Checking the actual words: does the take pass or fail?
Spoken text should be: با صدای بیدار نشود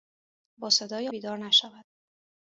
pass